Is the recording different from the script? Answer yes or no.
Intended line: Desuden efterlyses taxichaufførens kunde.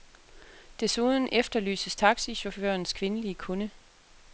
yes